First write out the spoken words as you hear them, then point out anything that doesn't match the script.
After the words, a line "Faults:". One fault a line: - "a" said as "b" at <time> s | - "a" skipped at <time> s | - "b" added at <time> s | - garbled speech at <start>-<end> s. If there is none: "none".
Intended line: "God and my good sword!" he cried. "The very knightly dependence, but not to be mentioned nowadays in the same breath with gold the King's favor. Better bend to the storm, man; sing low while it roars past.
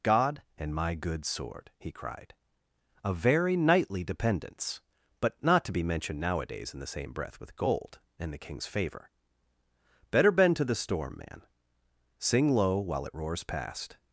"God and my good sword!" he cried. "A very knightly dependence, but not to be mentioned nowadays in the same breath with gold and the King's favor. Better bend to the storm, man; sing low while it roars past.
Faults:
- "The" said as "A" at 3.0 s
- "and" added at 8.2 s